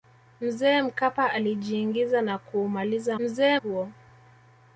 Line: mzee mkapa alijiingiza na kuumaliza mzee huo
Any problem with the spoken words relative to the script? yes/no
no